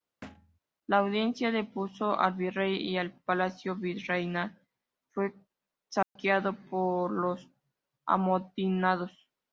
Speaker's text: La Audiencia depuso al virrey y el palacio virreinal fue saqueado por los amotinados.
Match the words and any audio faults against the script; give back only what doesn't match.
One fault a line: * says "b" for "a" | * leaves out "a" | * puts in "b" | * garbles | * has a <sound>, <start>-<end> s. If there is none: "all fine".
* has a thud, 0.2-0.6 s
* has a dropout, 6.0-6.2 s